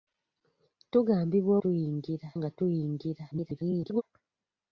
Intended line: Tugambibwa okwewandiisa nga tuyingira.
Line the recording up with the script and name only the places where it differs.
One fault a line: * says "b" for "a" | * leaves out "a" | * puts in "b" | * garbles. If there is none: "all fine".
* says "tuyingira" for "okwewandiisa"
* garbles